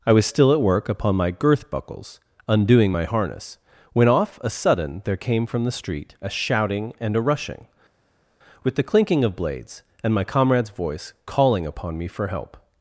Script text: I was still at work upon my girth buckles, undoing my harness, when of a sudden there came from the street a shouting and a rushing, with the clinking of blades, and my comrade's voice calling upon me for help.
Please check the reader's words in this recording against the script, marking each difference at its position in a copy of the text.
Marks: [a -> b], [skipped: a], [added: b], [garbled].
I was still at work upon my girth buckles, undoing my harness, when [of -> off] a sudden there came from the street a shouting and a rushing, with the clinking of blades, and my comrade's voice calling upon me for help.